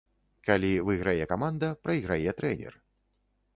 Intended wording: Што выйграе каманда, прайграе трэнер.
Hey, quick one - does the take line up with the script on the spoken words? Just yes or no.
no